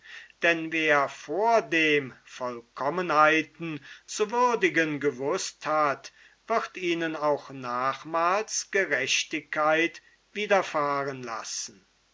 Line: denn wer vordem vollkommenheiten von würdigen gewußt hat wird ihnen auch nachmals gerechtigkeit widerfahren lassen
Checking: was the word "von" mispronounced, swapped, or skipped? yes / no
yes